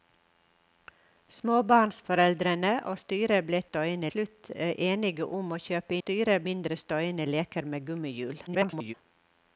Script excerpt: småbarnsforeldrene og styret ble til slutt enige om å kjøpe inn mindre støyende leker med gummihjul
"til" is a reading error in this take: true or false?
true